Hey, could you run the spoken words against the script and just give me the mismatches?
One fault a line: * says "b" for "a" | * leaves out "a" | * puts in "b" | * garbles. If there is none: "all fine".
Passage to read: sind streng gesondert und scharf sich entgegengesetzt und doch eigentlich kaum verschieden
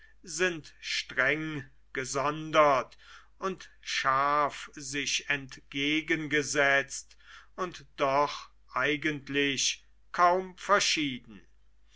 all fine